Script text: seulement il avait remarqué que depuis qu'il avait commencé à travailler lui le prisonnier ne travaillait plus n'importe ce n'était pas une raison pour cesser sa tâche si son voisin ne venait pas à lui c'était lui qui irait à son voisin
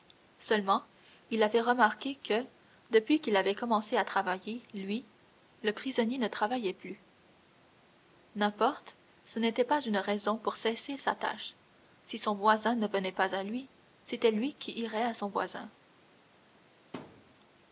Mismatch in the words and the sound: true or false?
true